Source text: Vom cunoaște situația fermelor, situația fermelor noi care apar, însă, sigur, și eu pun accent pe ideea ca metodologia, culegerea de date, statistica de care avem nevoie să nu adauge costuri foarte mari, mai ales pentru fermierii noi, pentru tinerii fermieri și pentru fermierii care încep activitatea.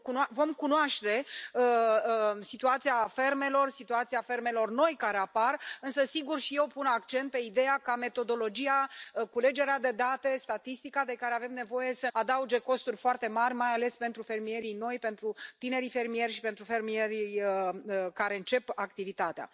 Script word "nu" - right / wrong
wrong